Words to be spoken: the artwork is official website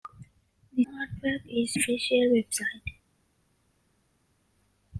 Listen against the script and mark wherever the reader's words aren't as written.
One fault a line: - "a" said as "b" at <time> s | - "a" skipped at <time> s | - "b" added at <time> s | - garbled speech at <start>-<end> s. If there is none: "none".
none